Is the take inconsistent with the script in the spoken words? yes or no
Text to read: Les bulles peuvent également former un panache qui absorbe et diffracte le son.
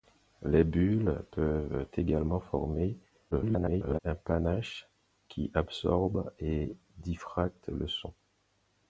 yes